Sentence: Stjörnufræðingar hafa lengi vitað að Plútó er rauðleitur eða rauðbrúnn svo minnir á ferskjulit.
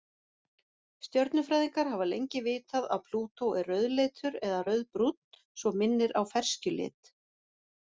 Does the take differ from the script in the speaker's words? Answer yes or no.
no